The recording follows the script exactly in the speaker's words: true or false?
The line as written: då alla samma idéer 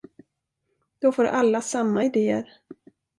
false